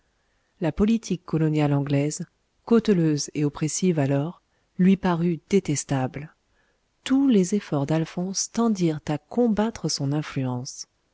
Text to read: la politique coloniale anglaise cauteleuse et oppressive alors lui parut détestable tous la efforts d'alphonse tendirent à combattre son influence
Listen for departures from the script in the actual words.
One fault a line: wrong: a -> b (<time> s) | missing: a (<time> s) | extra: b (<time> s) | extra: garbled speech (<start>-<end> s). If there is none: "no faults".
wrong: la -> les (7.3 s)